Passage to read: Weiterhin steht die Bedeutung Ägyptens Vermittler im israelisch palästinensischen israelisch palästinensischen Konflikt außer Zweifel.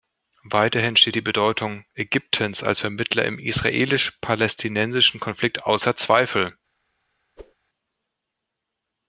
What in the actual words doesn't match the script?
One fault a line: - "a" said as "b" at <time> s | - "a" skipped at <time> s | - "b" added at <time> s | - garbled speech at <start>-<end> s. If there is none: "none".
- "als" added at 2.6 s
- "israelisch palästinensischen" skipped at 5.2 s